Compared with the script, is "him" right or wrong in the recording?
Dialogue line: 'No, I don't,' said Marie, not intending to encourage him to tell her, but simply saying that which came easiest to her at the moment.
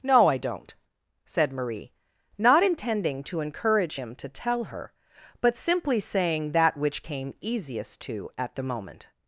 right